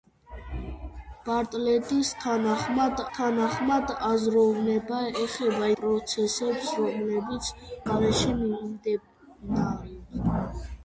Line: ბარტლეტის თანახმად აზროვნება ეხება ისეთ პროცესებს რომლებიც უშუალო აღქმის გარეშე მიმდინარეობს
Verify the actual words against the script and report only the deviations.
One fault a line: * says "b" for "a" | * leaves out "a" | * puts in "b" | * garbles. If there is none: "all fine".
* puts in "თანახმად"
* leaves out "ისეთ"
* leaves out "უშუალო აღქმის"